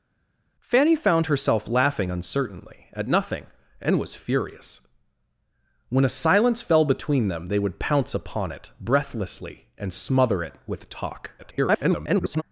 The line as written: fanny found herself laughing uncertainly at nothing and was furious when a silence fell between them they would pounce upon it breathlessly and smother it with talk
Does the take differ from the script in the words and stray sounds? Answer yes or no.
yes